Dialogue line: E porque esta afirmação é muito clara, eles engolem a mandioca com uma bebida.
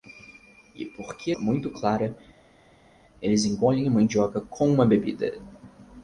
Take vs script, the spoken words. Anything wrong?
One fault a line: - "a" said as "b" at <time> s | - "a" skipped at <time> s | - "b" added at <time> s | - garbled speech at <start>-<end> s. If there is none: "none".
- "esta afirmação" skipped at 1.3 s